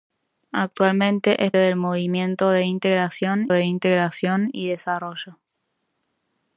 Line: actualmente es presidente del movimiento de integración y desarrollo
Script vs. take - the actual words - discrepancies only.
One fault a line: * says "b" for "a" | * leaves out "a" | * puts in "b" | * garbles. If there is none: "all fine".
* leaves out "presidente"
* puts in "de integración"